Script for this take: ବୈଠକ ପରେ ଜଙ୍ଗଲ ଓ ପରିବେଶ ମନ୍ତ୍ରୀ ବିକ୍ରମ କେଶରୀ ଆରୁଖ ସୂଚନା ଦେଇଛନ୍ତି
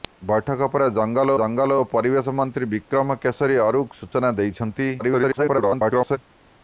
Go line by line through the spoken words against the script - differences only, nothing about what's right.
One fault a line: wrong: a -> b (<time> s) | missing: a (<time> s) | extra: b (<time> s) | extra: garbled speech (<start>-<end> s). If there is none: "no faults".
extra: ଜଙ୍ଗଲ (1.4 s)
extra: garbled speech (5.0-6.2 s)